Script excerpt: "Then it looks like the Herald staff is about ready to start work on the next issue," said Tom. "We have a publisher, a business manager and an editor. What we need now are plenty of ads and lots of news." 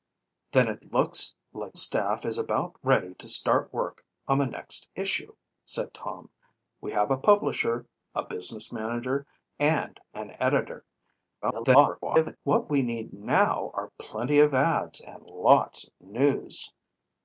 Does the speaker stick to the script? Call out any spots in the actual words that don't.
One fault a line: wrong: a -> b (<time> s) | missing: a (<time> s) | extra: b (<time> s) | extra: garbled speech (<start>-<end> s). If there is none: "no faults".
missing: the Herald (1.8 s)
extra: garbled speech (11.4-12.4 s)